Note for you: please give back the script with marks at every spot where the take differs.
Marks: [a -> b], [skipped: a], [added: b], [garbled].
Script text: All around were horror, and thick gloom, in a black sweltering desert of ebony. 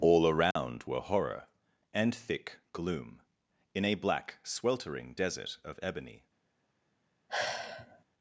All around were horror, and thick gloom, in a black sweltering desert of ebony.